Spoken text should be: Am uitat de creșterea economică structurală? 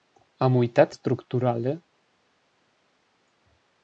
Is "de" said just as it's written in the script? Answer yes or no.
no